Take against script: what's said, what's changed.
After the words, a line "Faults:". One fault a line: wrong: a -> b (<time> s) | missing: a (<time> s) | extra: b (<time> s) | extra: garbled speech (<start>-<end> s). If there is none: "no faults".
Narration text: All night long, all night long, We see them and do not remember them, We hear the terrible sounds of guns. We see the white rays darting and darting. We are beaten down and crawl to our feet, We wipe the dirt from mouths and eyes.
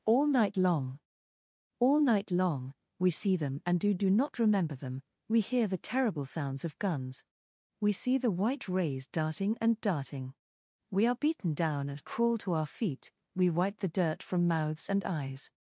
All night long, all night long, We see them and do do not remember them, We hear the terrible sounds of guns. We see the white rays darting and darting. We are beaten down and crawl to our feet, We wipe the dirt from mouths and eyes.
Faults:
extra: do (3.9 s)